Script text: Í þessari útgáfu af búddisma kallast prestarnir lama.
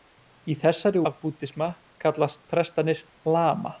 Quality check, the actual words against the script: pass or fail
fail